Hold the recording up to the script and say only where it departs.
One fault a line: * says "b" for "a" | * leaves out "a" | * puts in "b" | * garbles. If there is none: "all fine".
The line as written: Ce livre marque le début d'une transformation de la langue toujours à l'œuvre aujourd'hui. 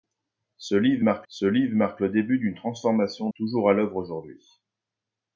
* puts in "ce livre marque"
* leaves out "de la langue"